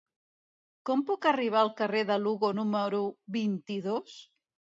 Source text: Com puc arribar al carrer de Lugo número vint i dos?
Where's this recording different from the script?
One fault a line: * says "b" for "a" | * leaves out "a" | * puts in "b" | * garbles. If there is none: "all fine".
all fine